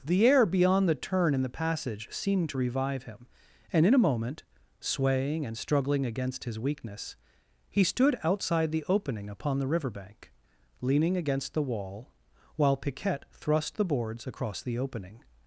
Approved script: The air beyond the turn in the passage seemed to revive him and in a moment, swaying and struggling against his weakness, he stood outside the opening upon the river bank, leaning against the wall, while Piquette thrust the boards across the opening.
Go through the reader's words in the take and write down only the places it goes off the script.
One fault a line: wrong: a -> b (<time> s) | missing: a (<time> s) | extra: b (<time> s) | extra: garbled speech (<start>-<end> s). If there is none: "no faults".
no faults